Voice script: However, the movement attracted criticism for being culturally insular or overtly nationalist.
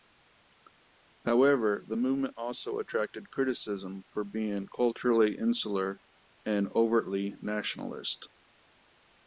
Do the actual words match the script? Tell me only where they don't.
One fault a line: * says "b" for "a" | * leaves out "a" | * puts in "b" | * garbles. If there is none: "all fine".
* puts in "also"
* says "and" for "or"